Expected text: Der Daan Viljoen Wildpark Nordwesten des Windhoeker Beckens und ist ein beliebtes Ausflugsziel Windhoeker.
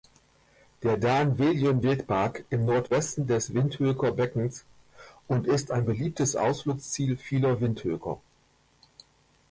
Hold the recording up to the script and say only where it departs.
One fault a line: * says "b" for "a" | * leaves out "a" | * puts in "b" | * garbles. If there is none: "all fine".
* puts in "im"
* puts in "vieler"